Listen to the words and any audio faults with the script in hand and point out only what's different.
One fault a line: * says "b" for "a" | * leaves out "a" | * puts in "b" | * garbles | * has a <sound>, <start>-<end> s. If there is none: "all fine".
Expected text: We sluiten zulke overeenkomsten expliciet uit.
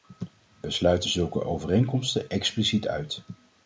all fine